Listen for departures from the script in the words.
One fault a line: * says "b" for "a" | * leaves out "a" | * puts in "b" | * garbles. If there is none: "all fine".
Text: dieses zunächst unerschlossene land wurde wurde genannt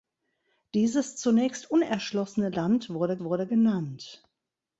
all fine